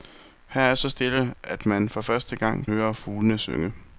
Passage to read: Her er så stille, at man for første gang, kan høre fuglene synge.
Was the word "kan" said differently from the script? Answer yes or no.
yes